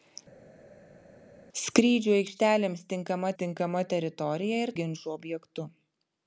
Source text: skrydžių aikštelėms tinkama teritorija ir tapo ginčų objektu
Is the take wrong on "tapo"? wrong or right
wrong